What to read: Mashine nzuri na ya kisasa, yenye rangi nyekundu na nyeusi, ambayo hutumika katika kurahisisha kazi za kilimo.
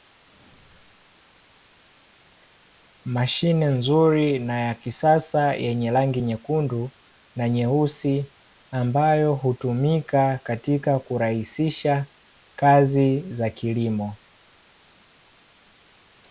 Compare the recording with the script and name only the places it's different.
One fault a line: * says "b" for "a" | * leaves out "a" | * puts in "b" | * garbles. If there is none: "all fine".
all fine